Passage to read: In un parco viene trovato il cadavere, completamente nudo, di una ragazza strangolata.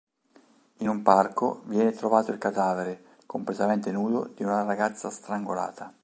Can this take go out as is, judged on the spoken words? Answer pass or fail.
pass